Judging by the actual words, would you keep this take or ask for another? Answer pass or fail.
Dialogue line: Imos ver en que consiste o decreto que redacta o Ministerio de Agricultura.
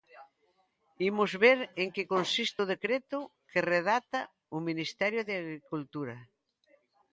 pass